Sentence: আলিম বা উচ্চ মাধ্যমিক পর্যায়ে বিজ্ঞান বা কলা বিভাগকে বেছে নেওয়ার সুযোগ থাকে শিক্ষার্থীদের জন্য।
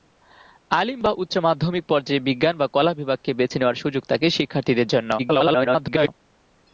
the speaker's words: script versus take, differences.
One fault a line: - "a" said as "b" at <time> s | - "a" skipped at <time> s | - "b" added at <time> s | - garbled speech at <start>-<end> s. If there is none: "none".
- garbled speech at 5.2-6.1 s